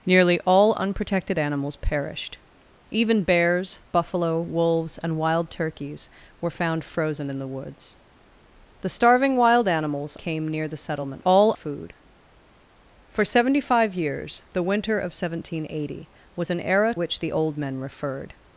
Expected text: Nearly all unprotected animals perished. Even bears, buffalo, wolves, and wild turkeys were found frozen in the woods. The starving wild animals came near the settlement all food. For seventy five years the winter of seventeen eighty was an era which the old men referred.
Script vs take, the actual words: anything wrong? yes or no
no